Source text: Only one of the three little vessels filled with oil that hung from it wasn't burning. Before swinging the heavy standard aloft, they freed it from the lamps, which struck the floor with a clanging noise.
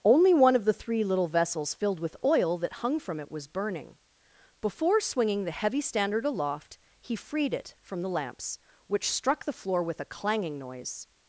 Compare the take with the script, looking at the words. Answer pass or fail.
fail